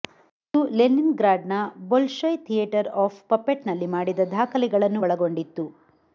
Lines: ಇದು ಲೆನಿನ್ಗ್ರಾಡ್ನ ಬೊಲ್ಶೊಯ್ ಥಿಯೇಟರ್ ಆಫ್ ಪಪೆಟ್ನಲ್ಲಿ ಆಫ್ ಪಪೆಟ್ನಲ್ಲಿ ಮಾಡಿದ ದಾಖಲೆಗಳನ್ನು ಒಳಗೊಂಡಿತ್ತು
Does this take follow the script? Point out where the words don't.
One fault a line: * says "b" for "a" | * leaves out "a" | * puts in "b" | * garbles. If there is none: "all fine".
* leaves out "ಆಫ್ ಪಪೆಟ್ನಲ್ಲಿ"